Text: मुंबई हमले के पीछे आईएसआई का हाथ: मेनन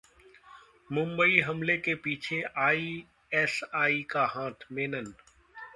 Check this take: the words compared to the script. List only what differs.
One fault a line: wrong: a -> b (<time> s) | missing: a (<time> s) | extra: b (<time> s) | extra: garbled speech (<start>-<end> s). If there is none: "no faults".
no faults